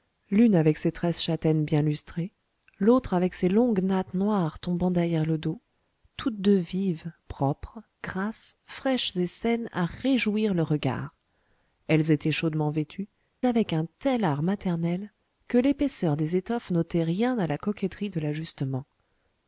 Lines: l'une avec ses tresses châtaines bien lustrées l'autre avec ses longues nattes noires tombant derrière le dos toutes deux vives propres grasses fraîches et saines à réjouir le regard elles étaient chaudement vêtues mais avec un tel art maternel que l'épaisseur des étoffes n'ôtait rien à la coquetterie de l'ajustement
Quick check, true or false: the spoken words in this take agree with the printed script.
false